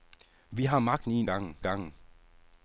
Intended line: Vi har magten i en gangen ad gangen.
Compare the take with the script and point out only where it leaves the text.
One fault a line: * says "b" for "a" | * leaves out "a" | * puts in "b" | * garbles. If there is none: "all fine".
all fine